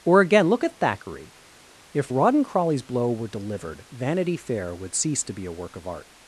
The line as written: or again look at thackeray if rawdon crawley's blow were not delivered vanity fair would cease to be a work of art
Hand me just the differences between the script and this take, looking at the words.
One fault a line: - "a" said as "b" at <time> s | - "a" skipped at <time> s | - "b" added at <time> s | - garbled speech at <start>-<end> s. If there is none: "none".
- "not" skipped at 3.3 s